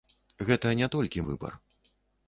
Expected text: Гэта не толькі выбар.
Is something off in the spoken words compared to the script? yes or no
no